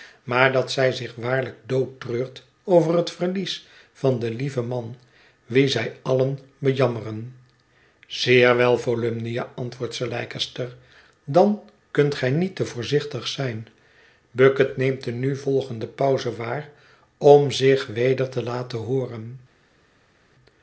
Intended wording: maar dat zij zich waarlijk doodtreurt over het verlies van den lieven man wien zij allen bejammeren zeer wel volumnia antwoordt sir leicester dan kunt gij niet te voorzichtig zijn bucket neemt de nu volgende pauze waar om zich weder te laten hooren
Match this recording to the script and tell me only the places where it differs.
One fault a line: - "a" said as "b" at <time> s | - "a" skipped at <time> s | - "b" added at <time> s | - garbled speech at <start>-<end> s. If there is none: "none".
none